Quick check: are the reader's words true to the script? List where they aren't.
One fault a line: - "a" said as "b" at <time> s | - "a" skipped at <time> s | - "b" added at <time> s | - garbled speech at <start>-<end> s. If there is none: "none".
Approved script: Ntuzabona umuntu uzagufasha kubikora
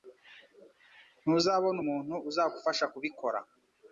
none